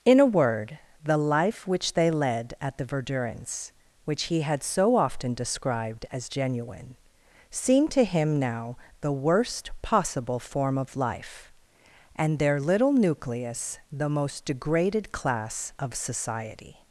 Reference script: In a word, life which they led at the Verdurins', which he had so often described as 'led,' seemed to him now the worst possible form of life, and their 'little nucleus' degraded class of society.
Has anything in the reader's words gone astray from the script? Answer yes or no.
yes